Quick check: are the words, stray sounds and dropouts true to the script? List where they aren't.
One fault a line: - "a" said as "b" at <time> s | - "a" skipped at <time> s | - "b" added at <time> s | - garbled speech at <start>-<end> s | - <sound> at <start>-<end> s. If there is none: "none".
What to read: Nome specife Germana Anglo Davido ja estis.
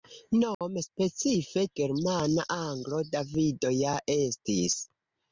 - dropout at 0.5-0.6 s